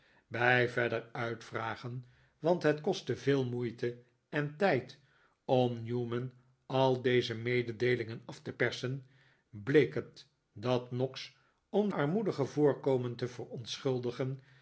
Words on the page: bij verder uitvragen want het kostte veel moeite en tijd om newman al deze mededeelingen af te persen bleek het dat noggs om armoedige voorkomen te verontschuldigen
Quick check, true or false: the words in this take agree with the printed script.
true